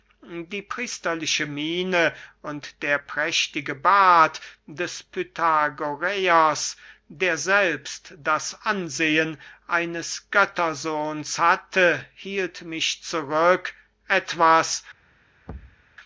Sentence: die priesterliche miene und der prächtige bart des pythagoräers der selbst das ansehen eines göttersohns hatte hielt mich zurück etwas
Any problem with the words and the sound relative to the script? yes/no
yes